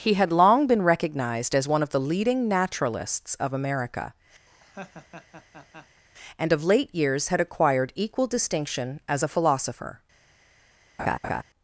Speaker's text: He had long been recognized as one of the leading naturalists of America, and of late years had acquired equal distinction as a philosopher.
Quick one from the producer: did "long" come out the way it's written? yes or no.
yes